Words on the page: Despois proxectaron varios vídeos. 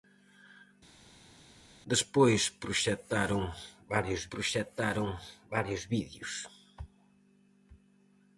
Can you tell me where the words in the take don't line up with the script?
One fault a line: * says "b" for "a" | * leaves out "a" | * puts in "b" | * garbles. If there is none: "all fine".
* puts in "proxectaron varios"